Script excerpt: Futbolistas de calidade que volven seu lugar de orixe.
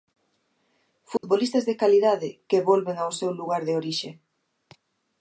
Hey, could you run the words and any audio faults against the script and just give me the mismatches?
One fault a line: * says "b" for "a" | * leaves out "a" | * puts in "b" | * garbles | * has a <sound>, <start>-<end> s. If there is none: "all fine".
* has a dropout, 1.2-1.2 s
* puts in "ao"